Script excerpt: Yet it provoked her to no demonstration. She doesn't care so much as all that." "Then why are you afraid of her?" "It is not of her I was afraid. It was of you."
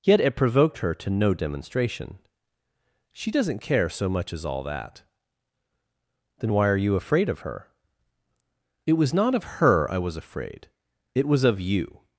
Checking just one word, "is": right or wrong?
wrong